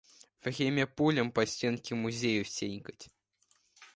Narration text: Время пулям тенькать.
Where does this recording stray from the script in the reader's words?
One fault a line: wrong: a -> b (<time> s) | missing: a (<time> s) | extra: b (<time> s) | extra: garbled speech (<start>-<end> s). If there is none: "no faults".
extra: по стенке музеев (1.3 s)